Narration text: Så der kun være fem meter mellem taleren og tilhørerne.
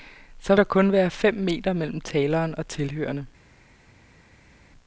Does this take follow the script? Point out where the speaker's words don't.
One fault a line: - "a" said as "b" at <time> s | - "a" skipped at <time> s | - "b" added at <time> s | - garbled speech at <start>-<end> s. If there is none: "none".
none